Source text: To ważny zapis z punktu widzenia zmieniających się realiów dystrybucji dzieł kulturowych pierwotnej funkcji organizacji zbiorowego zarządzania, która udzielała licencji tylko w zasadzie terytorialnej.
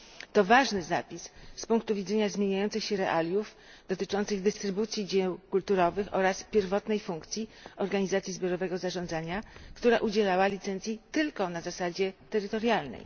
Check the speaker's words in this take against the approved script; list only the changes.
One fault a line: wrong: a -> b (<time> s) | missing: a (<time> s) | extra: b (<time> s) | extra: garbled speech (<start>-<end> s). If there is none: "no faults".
extra: dotyczących (3.9 s)
extra: oraz (6.1 s)
wrong: w -> na (11.5 s)